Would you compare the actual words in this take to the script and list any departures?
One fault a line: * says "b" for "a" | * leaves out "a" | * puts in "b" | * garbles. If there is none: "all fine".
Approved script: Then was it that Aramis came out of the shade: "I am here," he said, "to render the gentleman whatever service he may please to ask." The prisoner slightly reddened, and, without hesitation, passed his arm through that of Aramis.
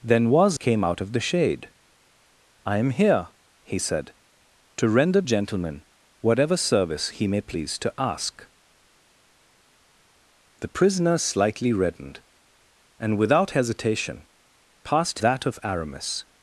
* leaves out "it that Aramis"
* leaves out "the"
* leaves out "his arm through"